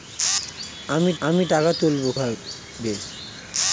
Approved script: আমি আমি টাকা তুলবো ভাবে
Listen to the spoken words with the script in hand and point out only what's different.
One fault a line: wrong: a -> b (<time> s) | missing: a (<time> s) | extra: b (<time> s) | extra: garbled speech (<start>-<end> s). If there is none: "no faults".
no faults